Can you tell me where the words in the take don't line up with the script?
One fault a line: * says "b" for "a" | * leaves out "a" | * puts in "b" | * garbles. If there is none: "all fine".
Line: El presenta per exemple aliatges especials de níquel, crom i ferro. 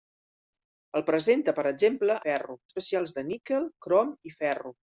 * says "ferro" for "aliatges"